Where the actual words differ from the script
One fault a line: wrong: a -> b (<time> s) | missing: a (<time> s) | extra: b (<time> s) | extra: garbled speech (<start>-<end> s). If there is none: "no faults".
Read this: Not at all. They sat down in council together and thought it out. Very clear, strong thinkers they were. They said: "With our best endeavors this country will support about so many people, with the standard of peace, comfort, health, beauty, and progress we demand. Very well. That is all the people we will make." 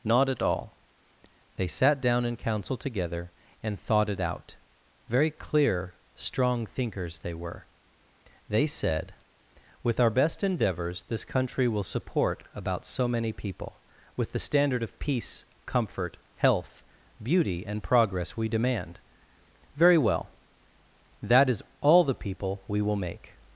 no faults